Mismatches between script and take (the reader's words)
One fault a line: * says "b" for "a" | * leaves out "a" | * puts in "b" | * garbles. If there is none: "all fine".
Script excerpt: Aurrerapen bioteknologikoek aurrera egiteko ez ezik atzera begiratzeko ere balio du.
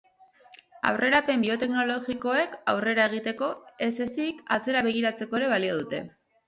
* says "dute" for "du"